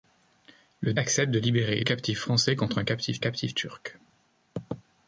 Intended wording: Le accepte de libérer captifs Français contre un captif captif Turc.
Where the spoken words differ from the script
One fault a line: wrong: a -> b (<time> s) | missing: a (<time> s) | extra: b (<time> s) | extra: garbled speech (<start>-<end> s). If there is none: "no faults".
no faults